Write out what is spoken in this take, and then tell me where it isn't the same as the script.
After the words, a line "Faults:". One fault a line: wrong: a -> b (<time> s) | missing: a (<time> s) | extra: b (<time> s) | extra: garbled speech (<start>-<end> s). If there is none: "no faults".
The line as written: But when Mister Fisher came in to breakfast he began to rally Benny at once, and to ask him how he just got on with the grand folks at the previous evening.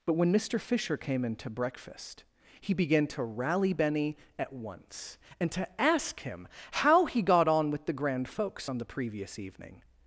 But when Mister Fisher came in to breakfast he began to rally Benny at once, and to ask him how he got on with the grand folks on the previous evening.
Faults:
missing: just (7.2 s)
wrong: at -> on (8.7 s)